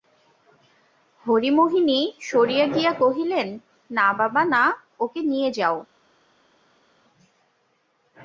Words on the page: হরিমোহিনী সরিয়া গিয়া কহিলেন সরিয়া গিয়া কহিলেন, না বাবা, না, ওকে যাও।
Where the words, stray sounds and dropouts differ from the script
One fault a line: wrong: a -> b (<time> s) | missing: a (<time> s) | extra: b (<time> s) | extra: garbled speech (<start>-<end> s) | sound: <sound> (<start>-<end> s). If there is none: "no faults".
missing: সরিয়া গিয়া কহিলেন (3.5 s)
extra: নিয়ে (5.2 s)